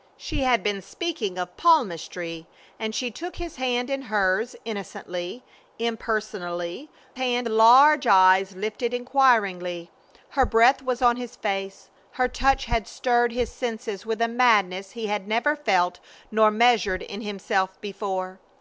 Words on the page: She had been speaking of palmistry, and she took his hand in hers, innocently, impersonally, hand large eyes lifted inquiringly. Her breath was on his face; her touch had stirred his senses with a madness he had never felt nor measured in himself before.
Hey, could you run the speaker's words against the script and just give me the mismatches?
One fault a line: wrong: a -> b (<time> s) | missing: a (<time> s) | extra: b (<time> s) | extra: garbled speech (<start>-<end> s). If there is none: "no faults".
no faults